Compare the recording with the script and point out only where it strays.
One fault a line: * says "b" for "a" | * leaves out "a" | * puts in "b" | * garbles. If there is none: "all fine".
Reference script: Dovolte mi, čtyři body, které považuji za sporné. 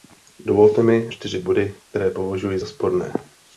all fine